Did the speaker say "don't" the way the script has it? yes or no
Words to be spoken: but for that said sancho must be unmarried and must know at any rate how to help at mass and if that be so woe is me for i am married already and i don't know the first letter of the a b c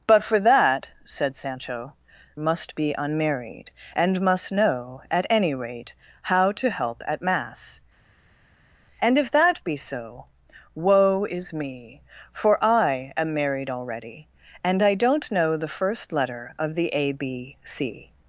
yes